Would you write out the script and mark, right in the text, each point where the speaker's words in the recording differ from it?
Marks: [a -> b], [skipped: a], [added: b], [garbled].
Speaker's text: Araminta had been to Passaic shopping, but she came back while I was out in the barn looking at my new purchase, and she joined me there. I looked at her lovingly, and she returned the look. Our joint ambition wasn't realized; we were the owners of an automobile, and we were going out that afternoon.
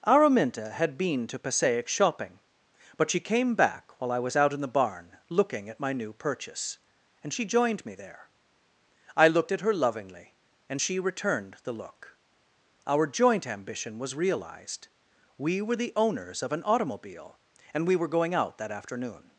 Araminta had been to Passaic shopping, but she came back while I was out in the barn looking at my new purchase, and she joined me there. I looked at her lovingly, and she returned the look. Our joint ambition [wasn't -> was] realized; we were the owners of an automobile, and we were going out that afternoon.